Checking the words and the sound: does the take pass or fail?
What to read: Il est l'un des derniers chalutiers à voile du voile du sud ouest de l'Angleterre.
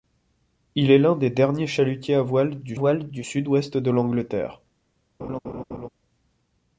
fail